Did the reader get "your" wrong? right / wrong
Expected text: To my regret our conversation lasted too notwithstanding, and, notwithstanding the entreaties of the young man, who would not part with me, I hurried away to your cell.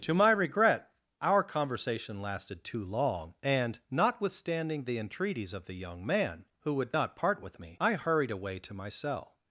wrong